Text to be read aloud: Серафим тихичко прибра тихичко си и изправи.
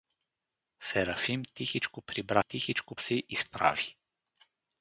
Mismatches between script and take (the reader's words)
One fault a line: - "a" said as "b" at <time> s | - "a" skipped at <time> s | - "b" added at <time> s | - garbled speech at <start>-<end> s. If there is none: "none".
none